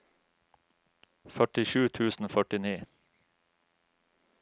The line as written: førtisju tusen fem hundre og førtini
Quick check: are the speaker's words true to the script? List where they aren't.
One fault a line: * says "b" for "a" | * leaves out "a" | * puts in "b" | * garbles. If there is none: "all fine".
* leaves out "fem hundre"